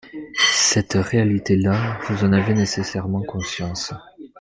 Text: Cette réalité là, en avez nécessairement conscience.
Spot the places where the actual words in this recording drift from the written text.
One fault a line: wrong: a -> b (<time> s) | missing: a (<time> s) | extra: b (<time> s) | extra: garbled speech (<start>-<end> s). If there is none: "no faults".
extra: vous (2.1 s)